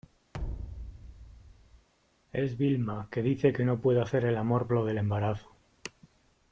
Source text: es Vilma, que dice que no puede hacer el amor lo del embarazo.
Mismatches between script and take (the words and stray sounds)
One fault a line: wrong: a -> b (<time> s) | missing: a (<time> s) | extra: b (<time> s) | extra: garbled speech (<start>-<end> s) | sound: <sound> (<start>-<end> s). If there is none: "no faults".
sound: thud (0.3-1.9 s)